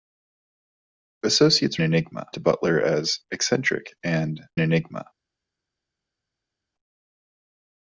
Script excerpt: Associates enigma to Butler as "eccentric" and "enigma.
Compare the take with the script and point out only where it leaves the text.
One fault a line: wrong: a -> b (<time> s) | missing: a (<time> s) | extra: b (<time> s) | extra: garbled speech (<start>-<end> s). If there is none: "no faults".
no faults